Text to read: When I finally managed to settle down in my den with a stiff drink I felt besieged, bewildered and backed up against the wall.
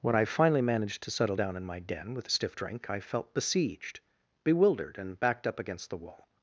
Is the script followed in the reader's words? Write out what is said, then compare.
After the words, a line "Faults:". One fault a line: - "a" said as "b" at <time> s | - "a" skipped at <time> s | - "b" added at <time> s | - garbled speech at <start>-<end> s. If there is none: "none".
When I finally managed to settle down in my den with a stiff drink I felt besieged, bewildered and backed up against the wall.
Faults:
none